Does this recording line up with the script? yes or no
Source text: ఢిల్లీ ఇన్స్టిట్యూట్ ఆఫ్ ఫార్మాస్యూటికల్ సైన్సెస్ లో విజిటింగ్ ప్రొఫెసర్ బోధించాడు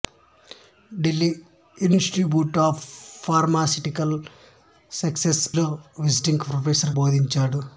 yes